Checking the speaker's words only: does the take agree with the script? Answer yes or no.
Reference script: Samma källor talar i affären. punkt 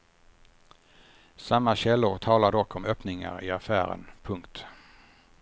no